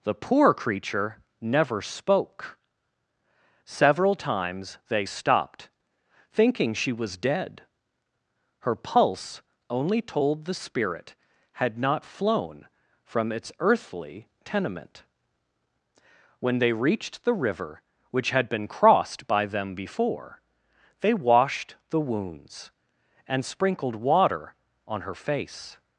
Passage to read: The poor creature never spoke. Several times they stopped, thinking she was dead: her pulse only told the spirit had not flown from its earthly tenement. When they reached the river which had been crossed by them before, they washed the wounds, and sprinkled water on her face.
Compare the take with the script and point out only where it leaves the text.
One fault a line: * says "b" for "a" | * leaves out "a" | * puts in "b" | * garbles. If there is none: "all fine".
all fine